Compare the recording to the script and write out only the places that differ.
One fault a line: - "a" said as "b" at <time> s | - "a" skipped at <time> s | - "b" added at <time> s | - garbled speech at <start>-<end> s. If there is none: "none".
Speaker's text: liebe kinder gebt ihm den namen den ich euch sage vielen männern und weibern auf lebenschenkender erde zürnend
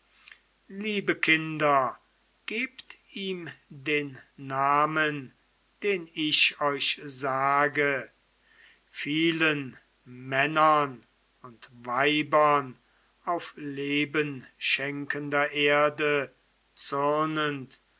none